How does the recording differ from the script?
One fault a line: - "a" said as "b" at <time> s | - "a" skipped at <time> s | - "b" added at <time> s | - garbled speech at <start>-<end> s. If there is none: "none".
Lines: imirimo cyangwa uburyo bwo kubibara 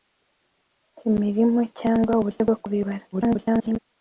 - garbled speech at 3.1-3.8 s